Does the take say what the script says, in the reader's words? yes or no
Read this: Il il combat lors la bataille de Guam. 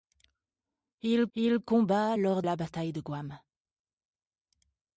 yes